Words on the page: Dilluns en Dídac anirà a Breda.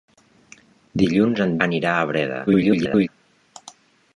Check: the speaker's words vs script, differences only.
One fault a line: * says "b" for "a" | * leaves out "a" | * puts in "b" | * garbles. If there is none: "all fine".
* leaves out "Dídac"
* garbles